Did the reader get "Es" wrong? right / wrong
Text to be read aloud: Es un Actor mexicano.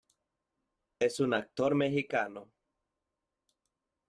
right